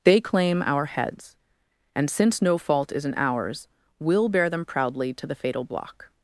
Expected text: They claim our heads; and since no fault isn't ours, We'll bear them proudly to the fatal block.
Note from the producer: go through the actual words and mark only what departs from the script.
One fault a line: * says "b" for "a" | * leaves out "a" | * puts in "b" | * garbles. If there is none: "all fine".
all fine